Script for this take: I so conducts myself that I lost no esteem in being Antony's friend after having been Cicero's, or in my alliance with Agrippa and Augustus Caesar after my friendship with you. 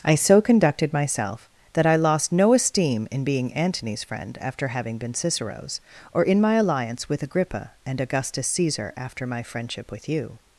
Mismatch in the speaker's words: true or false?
true